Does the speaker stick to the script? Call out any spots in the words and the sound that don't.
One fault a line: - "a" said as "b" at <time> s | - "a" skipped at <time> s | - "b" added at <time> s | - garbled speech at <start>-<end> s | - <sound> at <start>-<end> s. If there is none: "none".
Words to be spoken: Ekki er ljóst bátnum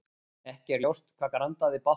- "hvað grandaði" added at 1.2 s